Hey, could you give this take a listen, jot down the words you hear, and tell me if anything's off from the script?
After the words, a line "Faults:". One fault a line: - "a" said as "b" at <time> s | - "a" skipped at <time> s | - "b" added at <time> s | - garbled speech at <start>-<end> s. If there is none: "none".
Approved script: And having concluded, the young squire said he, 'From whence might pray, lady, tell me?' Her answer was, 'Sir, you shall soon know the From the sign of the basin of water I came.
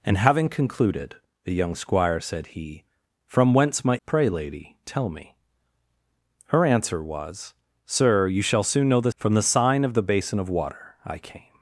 And having concluded, the young squire said he, 'From whence might pray, lady, tell me?' Her answer was, 'Sir, you shall soon know the From the sign of the basin of water I came.
Faults:
none